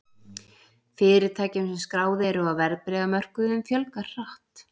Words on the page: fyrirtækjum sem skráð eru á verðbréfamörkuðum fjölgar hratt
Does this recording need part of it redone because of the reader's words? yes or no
no